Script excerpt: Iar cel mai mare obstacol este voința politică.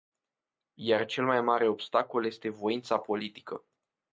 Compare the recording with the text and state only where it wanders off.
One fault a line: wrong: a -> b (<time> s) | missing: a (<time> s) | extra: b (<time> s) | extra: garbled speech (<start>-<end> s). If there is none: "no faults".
no faults